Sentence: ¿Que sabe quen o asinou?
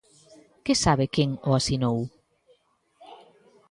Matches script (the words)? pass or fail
pass